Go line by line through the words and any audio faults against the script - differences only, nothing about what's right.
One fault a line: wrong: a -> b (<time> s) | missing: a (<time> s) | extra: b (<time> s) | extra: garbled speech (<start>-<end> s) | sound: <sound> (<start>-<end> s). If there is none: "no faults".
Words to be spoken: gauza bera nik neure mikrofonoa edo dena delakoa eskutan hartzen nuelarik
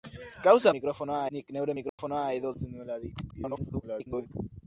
wrong: bera -> mikrofonoa (0.8 s)
sound: dropout (1.9-2.0 s)
missing: dena delakoa eskutan (2.5 s)
extra: garbled speech (3.3-4.3 s)